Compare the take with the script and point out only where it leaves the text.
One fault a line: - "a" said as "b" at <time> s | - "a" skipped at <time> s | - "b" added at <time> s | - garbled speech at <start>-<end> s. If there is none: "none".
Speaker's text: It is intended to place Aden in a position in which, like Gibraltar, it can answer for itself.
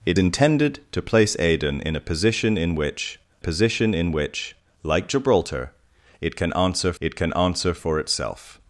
- "is" skipped at 0.2 s
- "position in which" added at 3.4 s
- "it can answer" added at 7.0 s